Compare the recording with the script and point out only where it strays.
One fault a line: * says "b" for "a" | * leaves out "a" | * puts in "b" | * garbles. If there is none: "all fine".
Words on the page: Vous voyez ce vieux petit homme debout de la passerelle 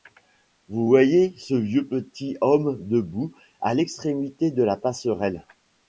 * puts in "à l'extrémité"